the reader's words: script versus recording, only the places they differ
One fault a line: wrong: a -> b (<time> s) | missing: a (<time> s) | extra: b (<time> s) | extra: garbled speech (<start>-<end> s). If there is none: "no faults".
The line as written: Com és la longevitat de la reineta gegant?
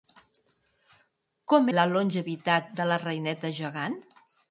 missing: és (1.7 s)